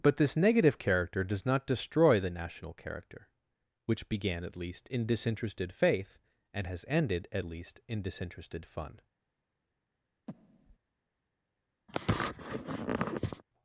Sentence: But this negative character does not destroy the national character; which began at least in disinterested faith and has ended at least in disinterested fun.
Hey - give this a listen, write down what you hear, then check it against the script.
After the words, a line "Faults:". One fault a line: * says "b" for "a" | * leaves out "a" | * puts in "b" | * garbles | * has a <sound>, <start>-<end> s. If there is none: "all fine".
But this negative character does not destroy the national character; which began at least in disinterested faith and has ended at least in disinterested fun.
Faults:
* has a breath, 10.3-10.8 s
* has a sniff, 11.9-13.4 s